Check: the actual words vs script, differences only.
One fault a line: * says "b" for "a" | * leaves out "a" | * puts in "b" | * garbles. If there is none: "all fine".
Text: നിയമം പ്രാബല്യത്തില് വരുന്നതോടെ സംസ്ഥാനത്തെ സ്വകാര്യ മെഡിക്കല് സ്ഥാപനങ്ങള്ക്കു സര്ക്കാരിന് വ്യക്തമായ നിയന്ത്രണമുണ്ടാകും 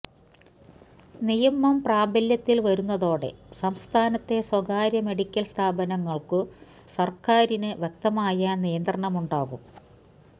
all fine